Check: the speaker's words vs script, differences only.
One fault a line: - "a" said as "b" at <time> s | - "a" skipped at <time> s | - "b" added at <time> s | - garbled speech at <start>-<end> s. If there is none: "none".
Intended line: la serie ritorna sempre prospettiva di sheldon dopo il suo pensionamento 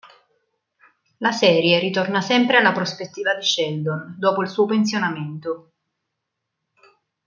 - "alla" added at 2.6 s